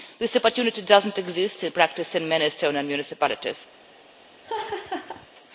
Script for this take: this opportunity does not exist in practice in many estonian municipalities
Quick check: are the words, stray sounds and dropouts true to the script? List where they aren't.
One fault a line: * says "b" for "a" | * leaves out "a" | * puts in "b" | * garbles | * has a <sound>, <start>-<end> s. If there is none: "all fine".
* has a laugh, 4.4-5.3 s